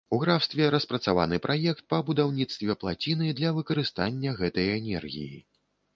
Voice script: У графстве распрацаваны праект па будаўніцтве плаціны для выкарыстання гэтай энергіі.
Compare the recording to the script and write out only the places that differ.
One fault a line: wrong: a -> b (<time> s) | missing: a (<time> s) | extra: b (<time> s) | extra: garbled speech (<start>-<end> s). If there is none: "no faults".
no faults